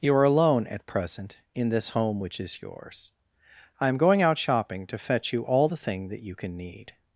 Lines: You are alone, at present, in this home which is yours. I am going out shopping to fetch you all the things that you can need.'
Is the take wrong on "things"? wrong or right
wrong